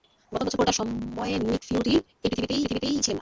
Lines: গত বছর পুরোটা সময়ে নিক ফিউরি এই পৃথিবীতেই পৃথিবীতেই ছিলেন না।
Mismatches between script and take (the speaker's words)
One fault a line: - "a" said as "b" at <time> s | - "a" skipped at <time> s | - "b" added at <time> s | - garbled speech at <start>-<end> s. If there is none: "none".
none